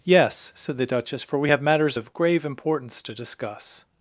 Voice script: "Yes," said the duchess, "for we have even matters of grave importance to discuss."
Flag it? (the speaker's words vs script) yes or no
yes